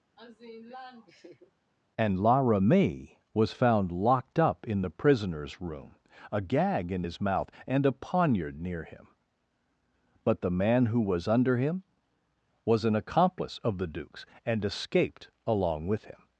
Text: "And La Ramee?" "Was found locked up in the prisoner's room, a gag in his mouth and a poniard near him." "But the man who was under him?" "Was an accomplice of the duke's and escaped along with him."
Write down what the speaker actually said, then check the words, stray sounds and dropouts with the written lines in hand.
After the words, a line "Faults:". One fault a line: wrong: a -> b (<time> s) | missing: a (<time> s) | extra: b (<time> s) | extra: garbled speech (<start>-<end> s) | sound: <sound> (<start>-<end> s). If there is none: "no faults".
"And La Ramee?" "Was found locked up in the prisoner's room, a gag in his mouth and a poniard near him." "But the man who was under him?" "Was an accomplice of the duke's and escaped along with him."
Faults:
sound: laugh (0.2-1.5 s)